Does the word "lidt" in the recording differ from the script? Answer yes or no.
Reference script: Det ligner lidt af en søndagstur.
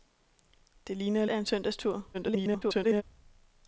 yes